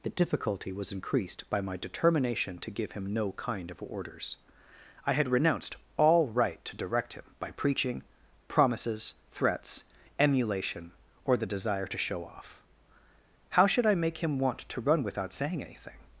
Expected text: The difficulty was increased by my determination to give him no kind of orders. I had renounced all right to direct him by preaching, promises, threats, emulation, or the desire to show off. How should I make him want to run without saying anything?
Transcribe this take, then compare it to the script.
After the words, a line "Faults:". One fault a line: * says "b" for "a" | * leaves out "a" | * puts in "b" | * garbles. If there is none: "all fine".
The difficulty was increased by my determination to give him no kind of orders. I had renounced all right to direct him by preaching, promises, threats, emulation, or the desire to show off. How should I make him want to run without saying anything?
Faults:
all fine